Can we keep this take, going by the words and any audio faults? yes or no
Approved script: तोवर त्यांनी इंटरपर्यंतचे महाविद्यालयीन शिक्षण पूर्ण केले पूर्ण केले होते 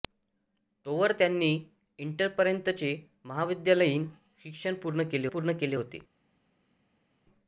yes